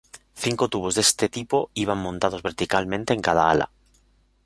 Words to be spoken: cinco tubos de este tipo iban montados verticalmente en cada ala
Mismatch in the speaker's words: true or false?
false